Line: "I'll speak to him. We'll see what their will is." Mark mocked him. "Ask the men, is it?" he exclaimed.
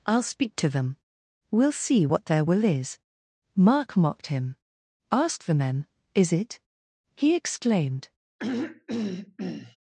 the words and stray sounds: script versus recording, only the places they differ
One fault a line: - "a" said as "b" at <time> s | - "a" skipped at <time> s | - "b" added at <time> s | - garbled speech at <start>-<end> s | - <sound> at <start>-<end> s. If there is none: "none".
- "him" said as "them" at 0.7 s
- throat clearing at 8.4-9.8 s